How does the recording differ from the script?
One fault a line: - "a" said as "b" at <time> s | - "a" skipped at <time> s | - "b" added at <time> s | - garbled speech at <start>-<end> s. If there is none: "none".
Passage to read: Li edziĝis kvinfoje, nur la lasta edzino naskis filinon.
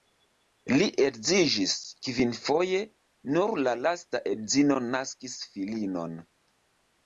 none